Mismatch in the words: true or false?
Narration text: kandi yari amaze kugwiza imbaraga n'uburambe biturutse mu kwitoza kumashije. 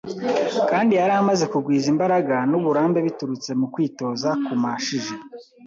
false